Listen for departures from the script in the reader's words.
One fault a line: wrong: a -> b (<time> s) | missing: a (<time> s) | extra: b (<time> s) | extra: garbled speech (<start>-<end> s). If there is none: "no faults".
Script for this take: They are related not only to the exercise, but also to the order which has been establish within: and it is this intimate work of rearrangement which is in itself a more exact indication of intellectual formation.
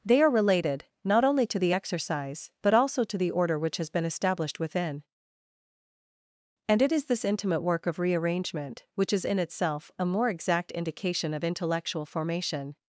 wrong: establish -> established (4.1 s)